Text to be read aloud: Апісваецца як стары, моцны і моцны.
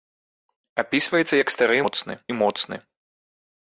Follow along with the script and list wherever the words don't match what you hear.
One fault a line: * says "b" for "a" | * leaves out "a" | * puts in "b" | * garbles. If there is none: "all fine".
all fine